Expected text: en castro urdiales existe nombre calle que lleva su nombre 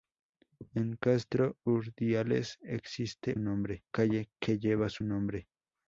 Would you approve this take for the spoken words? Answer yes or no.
yes